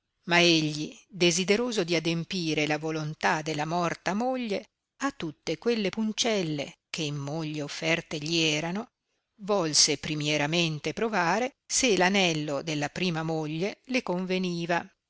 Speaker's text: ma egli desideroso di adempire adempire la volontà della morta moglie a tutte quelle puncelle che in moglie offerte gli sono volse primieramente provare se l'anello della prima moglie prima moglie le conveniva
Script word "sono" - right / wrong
wrong